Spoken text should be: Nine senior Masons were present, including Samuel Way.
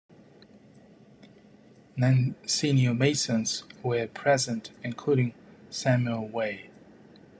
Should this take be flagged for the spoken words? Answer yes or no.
no